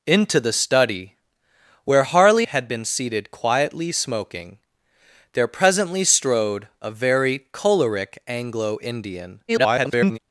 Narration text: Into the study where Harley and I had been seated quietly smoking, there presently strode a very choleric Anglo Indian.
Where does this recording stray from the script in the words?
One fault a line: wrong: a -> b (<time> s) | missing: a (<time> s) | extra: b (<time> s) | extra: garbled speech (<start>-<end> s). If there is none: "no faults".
missing: and I (2.5 s)
extra: garbled speech (9.5-10.2 s)